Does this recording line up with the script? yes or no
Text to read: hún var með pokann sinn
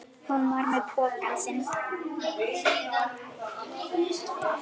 yes